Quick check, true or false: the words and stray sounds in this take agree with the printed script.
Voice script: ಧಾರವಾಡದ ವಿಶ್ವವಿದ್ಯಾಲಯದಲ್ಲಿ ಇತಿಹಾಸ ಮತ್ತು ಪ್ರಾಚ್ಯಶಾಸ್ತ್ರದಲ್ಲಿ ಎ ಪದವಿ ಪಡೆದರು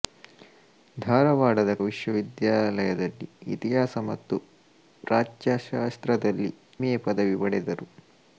true